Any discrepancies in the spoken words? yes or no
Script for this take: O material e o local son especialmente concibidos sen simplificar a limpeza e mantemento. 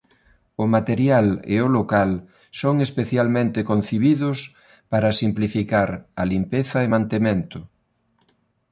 yes